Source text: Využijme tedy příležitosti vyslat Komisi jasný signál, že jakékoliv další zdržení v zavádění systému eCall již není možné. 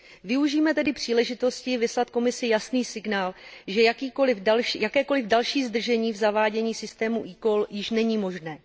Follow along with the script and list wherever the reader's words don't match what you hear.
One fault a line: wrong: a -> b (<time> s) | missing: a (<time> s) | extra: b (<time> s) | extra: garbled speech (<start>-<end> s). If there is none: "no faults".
no faults